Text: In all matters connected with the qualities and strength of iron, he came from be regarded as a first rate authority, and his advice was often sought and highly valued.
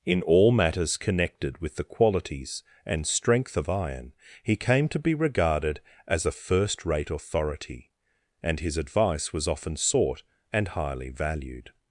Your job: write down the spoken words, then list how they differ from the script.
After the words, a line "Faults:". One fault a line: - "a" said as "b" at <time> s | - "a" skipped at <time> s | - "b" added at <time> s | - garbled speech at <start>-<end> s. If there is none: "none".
In all matters connected with the qualities and strength of iron, he came to be regarded as a first rate authority, and his advice was often sought and highly valued.
Faults:
- "from" said as "to" at 4.9 s